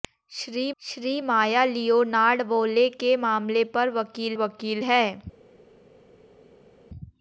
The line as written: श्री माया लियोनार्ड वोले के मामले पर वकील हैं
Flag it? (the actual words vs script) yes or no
yes